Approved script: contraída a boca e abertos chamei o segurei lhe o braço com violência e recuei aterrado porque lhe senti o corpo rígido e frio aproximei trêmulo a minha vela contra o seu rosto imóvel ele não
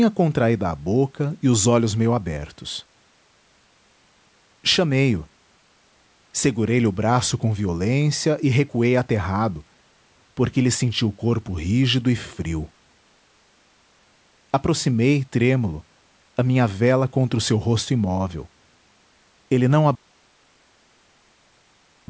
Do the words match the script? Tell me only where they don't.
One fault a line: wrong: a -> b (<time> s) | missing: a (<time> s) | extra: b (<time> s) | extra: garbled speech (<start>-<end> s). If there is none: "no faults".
extra: os olhos meio (1.5 s)